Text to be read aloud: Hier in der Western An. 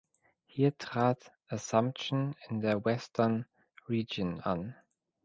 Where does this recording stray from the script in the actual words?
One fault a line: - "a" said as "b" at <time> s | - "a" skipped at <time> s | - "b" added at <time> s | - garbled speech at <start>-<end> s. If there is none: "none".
- "trat Assumption" added at 0.8 s
- "Region" added at 3.9 s